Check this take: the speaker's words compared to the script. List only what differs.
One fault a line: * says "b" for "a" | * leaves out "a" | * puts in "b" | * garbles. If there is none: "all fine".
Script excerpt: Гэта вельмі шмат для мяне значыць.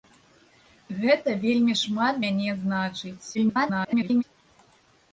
* leaves out "для"
* garbles